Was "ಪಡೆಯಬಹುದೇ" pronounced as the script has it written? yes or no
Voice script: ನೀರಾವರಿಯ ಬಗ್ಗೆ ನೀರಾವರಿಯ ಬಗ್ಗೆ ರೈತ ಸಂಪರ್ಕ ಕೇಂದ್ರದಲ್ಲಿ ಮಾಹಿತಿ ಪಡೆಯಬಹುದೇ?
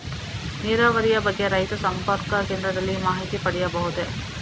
yes